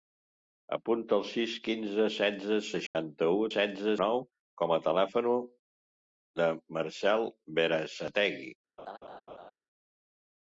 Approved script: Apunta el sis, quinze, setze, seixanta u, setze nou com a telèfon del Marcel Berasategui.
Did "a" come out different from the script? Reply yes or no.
no